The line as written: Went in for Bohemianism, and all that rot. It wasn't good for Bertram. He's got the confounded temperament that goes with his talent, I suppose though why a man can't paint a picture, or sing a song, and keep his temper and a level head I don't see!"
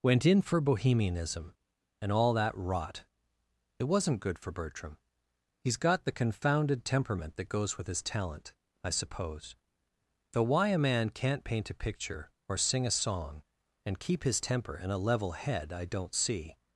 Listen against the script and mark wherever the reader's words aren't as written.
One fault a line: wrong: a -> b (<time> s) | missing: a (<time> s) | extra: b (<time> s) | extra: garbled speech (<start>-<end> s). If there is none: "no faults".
no faults